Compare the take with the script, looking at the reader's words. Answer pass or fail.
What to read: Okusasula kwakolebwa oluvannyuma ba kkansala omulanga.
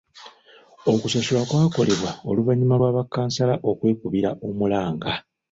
fail